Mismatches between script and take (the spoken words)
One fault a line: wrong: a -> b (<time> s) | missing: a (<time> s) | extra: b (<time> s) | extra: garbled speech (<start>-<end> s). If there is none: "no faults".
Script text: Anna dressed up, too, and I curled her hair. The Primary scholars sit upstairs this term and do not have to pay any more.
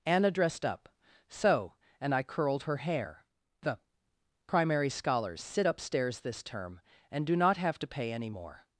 wrong: too -> so (1.3 s)